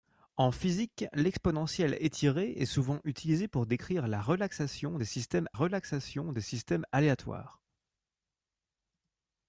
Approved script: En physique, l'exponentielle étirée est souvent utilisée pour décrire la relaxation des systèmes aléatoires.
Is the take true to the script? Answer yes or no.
no